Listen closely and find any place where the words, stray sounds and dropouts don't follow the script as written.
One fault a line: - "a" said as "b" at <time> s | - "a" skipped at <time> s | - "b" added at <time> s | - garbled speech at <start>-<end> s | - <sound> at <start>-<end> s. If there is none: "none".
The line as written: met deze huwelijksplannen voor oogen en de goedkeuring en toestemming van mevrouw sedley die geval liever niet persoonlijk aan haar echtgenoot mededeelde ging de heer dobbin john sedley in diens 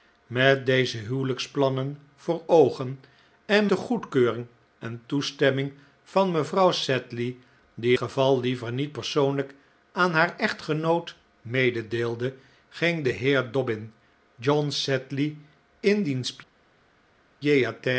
none